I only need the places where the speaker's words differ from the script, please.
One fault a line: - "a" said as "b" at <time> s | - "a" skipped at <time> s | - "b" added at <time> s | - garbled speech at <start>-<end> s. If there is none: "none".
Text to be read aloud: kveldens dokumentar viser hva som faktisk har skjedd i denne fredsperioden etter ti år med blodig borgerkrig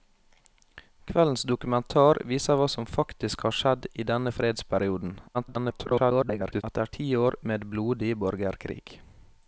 - garbled speech at 5.3-6.6 s